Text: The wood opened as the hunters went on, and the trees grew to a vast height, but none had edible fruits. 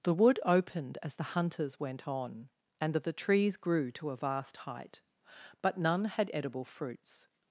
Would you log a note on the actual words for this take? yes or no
no